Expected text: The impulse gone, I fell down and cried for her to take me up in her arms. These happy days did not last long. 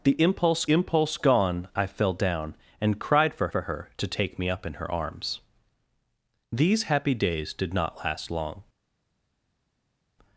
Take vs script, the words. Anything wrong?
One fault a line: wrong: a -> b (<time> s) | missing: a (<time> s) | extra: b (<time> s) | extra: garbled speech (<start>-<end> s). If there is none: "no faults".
extra: impulse (0.7 s)
extra: for (3.5 s)